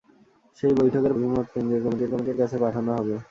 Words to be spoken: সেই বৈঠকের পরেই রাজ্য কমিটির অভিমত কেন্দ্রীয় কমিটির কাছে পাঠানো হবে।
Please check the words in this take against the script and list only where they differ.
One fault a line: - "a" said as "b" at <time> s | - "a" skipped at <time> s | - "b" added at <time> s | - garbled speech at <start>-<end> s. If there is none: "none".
- "পরেই রাজ্য" said as "অভিমত কেন্দ্রীয়" at 1.1 s
- "অভিমত কেন্দ্রীয়" skipped at 2.1 s